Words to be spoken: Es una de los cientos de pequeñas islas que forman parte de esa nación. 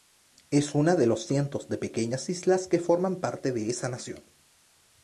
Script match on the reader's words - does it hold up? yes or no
yes